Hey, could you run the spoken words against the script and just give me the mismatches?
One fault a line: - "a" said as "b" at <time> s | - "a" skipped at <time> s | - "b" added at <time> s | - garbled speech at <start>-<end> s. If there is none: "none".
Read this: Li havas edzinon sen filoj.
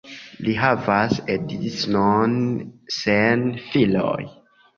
none